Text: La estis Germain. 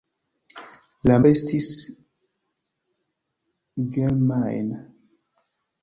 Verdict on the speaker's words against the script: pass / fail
pass